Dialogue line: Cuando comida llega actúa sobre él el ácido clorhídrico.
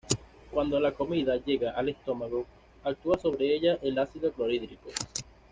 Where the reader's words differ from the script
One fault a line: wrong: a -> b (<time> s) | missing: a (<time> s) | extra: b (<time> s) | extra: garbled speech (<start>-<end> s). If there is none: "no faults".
extra: la (0.8 s)
extra: al estómago (1.7 s)
wrong: él -> ella (3.5 s)